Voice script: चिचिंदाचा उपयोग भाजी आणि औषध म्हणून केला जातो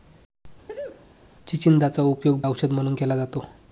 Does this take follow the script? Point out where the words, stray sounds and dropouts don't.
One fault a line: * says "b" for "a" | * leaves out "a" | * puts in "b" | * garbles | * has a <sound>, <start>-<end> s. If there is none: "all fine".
* has a sneeze, 0.7-1.1 s
* leaves out "भाजी आणि"